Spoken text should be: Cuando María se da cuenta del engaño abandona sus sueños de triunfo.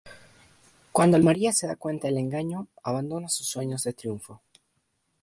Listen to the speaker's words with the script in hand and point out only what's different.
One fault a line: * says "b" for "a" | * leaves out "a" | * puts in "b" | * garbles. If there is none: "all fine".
all fine